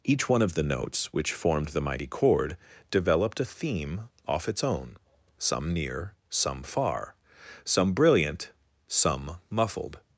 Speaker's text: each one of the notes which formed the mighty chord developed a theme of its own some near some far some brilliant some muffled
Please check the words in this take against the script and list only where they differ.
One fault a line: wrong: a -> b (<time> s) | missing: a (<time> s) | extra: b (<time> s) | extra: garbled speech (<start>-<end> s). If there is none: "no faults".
wrong: of -> off (4.3 s)